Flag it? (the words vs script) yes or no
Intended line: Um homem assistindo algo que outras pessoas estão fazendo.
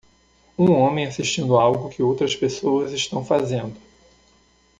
no